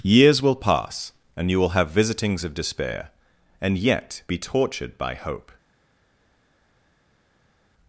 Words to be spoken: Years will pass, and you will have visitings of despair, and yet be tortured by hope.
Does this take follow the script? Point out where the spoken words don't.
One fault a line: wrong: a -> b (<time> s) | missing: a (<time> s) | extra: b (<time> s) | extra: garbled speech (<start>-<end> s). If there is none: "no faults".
no faults